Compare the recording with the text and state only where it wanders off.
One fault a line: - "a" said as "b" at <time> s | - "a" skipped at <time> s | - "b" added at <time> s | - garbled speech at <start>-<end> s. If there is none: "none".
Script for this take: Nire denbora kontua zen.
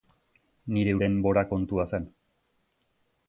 none